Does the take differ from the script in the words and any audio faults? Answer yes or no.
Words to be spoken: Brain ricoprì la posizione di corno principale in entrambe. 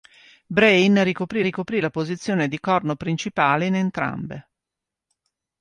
yes